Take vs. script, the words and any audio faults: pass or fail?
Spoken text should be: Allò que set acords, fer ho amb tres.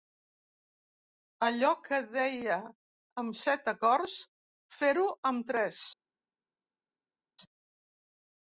fail